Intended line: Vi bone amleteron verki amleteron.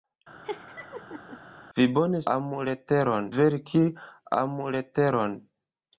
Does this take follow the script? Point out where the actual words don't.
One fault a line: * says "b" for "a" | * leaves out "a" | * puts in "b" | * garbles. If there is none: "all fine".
all fine